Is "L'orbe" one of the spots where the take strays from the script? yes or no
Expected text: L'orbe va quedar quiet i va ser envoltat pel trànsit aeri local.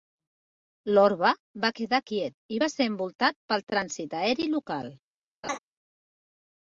no